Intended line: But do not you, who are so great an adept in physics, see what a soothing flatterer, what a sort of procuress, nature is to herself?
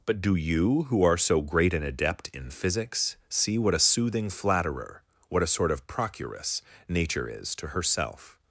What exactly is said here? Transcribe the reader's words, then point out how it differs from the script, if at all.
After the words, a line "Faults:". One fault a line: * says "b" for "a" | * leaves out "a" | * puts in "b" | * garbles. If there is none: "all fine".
But do you, who are so great an adept in physics, see what a soothing flatterer, what a sort of procuress, nature is to herself?
Faults:
* leaves out "not"